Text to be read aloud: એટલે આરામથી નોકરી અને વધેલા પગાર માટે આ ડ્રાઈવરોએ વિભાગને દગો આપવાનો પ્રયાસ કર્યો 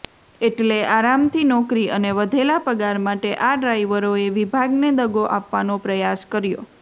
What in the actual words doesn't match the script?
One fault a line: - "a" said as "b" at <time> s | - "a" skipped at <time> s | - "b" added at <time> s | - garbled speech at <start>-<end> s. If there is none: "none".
none